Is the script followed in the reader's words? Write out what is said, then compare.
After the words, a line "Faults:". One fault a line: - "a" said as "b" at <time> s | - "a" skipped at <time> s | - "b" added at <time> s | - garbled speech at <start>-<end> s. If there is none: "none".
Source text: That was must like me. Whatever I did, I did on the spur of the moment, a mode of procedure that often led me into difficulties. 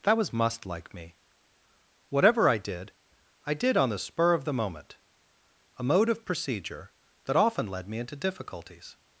That was must like me. Whatever I did, I did on the spur of the moment, a mode of procedure that often led me into difficulties.
Faults:
none